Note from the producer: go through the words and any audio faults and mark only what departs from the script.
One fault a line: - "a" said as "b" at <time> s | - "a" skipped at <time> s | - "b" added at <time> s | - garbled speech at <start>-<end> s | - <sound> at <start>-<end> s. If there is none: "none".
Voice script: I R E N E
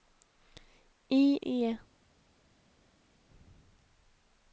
- "R E N" skipped at 1.4 s